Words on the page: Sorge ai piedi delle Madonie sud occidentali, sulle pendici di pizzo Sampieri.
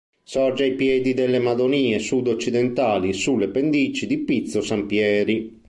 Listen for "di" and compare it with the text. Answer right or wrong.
right